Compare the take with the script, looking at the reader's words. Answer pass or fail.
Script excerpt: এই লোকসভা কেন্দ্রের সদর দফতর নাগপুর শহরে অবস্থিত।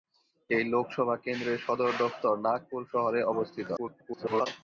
fail